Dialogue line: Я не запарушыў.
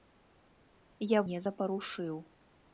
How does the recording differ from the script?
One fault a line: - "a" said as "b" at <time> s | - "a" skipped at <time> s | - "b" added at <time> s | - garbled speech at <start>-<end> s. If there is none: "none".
none